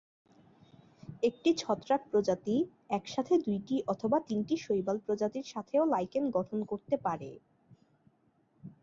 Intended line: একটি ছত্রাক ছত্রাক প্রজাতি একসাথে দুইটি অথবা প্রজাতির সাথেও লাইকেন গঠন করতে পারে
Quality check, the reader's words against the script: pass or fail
fail